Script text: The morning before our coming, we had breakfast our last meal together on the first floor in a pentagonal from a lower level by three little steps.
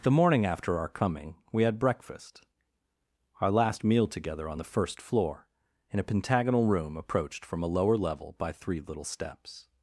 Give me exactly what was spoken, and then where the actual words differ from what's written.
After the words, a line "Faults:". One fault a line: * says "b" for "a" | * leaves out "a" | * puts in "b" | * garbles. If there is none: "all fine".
The morning after our coming, we had breakfast our last meal together on the first floor in a pentagonal room approached from a lower level by three little steps.
Faults:
* says "after" for "before"
* puts in "room approached"